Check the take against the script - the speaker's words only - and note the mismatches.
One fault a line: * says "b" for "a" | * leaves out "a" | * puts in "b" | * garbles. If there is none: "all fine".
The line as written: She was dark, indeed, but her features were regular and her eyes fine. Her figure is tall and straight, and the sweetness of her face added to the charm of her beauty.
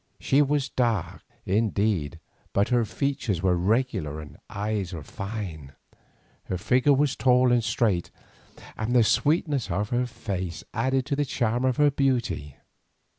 * says "was" for "is"